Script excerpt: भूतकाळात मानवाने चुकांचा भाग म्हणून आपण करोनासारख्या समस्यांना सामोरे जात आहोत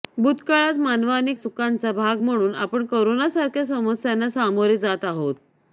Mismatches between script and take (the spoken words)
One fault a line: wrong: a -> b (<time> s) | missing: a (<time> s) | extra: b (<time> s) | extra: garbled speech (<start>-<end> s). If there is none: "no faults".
no faults